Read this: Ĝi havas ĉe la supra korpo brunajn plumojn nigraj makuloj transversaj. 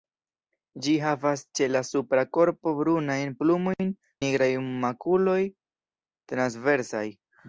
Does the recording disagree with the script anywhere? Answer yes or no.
no